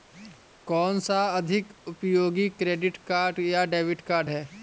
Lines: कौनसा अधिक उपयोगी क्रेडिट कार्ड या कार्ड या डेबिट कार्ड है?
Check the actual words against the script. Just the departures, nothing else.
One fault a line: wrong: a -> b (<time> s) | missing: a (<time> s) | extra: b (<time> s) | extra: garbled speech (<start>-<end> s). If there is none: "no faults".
missing: कार्ड या (3.6 s)